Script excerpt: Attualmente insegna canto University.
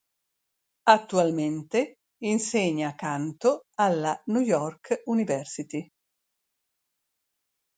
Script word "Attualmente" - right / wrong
right